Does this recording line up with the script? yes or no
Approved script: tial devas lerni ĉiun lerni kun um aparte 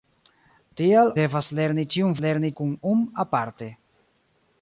yes